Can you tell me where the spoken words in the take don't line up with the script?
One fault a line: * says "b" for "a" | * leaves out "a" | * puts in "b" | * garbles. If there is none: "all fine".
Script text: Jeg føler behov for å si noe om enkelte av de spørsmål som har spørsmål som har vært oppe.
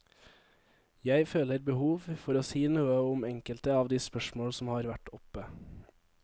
* leaves out "spørsmål som har"